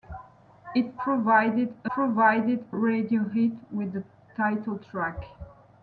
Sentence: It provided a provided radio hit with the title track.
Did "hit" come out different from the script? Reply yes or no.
no